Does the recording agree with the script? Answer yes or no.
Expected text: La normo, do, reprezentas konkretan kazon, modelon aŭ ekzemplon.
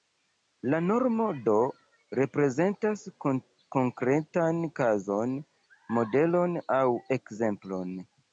yes